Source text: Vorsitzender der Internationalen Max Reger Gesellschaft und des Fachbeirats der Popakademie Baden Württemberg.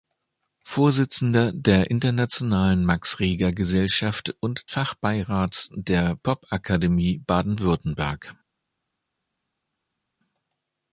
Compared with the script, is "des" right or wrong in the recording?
wrong